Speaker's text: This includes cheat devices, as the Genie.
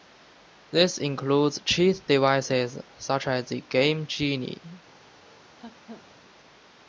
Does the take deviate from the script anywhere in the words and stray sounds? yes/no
yes